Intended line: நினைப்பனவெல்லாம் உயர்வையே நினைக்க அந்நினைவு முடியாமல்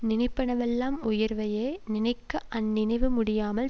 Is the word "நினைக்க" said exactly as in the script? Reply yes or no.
yes